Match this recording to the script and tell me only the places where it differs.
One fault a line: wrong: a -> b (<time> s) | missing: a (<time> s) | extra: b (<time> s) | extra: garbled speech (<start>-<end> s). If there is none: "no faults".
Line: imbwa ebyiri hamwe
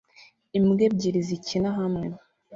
extra: zikina (1.3 s)